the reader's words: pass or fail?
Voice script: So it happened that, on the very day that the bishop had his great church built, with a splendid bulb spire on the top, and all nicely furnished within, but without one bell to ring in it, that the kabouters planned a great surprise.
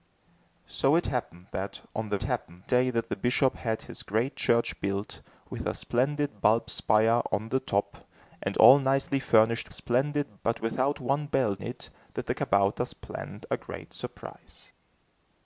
fail